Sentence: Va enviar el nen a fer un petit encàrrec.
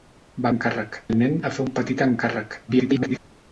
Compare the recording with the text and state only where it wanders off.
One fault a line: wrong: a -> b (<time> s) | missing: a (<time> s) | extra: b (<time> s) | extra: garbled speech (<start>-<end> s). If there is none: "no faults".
wrong: enviar -> encàrrec (0.5 s)
extra: garbled speech (2.7-3.2 s)